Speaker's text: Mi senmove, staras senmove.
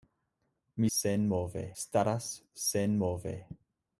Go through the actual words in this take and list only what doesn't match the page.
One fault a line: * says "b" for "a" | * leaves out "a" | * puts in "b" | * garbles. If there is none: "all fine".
all fine